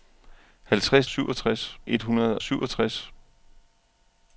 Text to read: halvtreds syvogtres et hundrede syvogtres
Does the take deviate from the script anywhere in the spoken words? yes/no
no